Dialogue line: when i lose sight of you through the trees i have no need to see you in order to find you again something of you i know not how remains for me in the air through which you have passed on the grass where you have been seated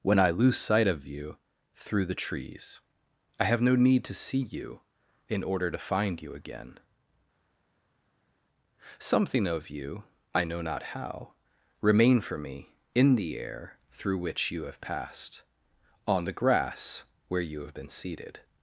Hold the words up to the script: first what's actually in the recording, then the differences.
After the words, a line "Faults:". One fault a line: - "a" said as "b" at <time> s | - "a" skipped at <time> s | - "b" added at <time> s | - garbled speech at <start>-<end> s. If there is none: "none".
when i lose sight of you through the trees i have no need to see you in order to find you again something of you i know not how remain for me in the air through which you have passed on the grass where you have been seated
Faults:
- "remains" said as "remain" at 11.8 s